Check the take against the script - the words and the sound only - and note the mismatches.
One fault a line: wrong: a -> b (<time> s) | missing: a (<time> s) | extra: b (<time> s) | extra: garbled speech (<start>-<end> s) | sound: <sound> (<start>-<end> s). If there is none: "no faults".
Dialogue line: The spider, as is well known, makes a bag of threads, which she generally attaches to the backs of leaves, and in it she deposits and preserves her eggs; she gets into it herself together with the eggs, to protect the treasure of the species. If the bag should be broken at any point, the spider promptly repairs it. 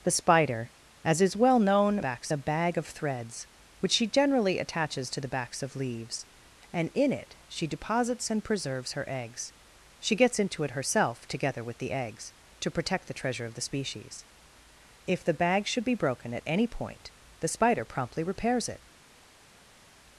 wrong: makes -> backs (2.0 s)